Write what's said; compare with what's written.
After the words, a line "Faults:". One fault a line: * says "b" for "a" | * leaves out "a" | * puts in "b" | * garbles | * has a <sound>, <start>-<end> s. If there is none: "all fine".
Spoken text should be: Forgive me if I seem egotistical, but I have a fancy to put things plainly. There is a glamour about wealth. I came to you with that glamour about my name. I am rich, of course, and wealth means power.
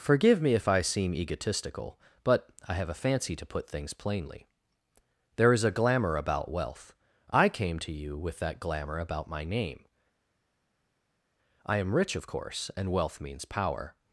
Forgive me if I seem egotistical, but I have a fancy to put things plainly. There is a glamour about wealth. I came to you with that glamour about my name. I am rich, of course, and wealth means power.
Faults:
all fine